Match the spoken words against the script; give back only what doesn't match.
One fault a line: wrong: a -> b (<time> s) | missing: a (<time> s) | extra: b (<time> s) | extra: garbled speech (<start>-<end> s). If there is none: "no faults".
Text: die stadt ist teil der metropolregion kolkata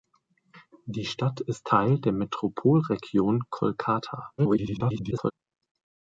extra: garbled speech (4.4-5.3 s)